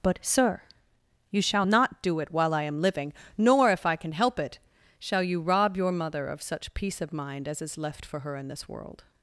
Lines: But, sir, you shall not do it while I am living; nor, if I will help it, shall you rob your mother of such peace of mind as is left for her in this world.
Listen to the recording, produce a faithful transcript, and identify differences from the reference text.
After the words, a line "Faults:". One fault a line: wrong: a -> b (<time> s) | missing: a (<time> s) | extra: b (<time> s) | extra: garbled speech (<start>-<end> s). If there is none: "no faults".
But, sir, you shall not do it while I am living; nor, if I can help it, shall you rob your mother of such peace of mind as is left for her in this world.
Faults:
wrong: will -> can (4.0 s)